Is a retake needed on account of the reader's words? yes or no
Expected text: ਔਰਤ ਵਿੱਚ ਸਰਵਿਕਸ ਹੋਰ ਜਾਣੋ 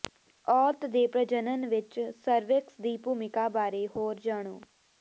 yes